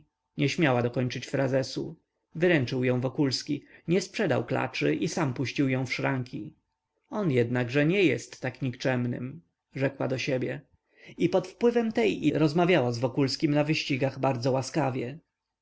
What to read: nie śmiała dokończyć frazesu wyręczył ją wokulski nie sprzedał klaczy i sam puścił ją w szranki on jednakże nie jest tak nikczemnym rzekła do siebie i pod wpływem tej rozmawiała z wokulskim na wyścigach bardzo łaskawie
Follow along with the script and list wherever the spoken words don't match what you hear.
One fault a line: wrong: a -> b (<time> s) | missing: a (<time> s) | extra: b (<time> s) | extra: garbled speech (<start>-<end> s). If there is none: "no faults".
no faults